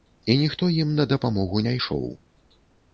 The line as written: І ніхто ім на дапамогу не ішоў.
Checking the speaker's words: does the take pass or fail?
pass